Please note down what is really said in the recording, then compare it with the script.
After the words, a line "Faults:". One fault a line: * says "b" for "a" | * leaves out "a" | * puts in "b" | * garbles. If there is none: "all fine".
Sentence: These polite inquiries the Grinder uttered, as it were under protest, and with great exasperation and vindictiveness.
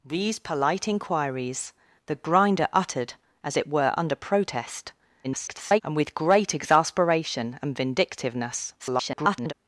These polite inquiries the Grinder uttered, as it were under protest, [garbled] and with great exasperation and vindictiveness. [garbled]
Faults:
* garbles
* garbles